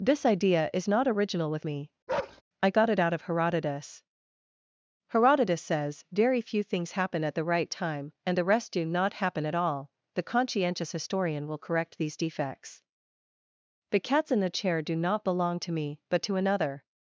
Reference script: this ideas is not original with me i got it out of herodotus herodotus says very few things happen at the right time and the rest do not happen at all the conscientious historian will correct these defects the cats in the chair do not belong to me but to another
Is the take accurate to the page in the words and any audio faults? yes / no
no